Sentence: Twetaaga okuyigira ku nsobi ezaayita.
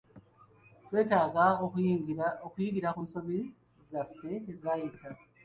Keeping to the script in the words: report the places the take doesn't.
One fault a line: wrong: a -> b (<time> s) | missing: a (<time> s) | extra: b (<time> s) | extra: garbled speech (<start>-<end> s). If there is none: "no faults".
extra: zaffe (3.9 s)